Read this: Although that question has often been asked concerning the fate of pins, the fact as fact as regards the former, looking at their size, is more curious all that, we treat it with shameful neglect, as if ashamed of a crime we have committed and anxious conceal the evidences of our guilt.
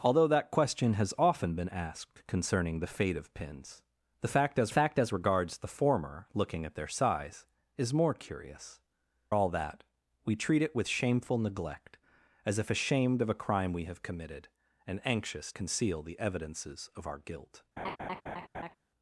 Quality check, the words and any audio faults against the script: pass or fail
fail